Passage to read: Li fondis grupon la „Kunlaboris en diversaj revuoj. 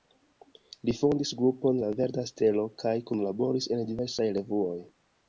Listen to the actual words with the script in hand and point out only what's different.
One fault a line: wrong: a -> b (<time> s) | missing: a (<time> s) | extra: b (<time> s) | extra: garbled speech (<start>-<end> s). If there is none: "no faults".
extra: Verda Stelo kaj (2.0 s)